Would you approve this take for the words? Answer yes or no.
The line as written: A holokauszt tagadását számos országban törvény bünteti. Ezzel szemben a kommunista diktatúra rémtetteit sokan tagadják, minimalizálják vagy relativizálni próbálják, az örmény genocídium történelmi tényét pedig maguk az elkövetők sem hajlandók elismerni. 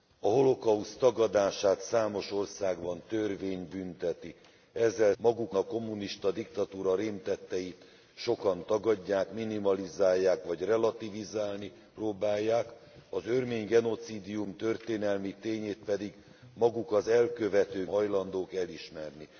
no